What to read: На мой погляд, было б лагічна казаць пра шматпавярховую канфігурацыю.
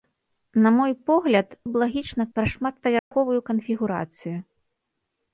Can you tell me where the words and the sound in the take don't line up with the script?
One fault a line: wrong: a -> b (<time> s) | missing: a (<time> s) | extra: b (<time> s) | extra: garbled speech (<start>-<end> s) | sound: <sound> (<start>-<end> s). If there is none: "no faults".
missing: было (1.5 s)
missing: казаць (2.3 s)
sound: dropout (3.0-3.1 s)